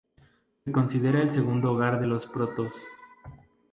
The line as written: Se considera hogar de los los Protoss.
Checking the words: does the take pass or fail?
fail